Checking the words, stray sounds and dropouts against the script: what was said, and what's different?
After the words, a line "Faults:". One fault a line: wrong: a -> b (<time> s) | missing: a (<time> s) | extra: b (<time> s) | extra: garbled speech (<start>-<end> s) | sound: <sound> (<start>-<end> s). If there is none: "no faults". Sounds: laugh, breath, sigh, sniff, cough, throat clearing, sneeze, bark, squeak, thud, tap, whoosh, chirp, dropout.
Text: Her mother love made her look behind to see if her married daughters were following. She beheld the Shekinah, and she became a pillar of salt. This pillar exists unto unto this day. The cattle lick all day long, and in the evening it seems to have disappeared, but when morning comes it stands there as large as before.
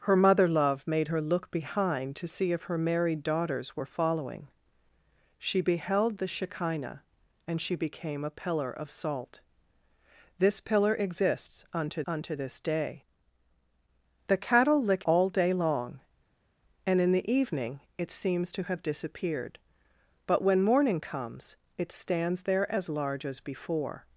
Her mother love made her look behind to see if her married daughters were following. She beheld the Shekinah, and she became a pillar of salt. This pillar exists unto unto this day. The cattle lick all day long, and in the evening it seems to have disappeared, but when morning comes it stands there as large as before.
Faults:
no faults